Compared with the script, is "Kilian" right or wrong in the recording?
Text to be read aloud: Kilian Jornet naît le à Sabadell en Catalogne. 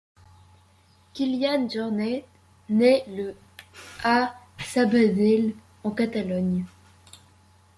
right